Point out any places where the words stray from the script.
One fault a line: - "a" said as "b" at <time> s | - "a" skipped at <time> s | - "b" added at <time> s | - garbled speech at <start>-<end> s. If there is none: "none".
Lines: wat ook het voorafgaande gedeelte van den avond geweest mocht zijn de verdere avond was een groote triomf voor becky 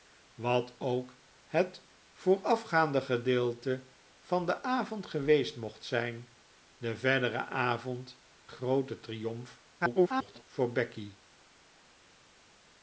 - "was een" skipped at 8.2 s
- garbled speech at 9.8-10.4 s